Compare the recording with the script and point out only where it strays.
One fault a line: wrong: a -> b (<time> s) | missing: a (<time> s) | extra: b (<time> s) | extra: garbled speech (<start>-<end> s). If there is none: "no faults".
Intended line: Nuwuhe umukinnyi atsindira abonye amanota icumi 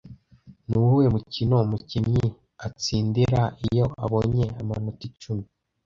extra: mukino (1.1 s)
extra: iyo (3.7 s)